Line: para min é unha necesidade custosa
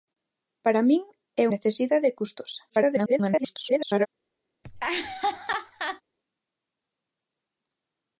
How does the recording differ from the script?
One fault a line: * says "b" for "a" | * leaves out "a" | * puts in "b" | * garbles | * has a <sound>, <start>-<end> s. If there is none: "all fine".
* leaves out "unha"
* garbles
* has a laugh, 4.6-6.0 s